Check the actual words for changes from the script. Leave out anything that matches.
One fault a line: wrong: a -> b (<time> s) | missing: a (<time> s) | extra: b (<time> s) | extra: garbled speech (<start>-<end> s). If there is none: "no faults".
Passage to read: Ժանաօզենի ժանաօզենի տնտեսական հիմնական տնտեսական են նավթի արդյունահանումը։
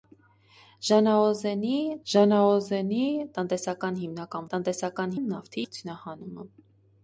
no faults